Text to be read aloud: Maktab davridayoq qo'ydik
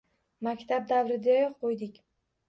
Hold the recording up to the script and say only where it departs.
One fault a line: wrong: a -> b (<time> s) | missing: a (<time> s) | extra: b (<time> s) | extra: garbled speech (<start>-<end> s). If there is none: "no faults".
no faults